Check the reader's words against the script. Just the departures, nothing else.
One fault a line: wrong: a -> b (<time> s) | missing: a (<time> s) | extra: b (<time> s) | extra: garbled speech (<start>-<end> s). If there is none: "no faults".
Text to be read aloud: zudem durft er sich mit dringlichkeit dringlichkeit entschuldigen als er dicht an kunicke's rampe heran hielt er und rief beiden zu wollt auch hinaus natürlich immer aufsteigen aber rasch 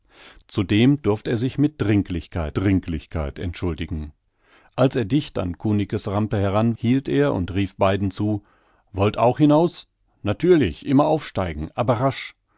no faults